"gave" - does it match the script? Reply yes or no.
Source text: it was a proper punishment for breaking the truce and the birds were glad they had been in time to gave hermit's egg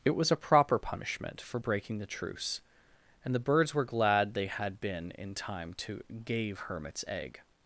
yes